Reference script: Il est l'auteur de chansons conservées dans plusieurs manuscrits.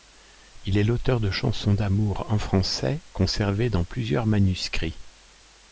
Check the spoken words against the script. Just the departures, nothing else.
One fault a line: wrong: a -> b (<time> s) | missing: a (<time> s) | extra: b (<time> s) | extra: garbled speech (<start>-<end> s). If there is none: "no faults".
extra: d'amour en français (1.8 s)